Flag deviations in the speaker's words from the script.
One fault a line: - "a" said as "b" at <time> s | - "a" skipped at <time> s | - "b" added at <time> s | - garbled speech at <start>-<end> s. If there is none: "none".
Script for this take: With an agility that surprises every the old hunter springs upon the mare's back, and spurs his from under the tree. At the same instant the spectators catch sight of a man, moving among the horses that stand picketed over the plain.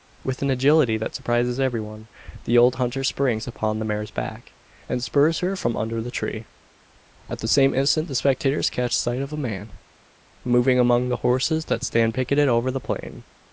- "one" added at 1.8 s
- "his" said as "her" at 5.4 s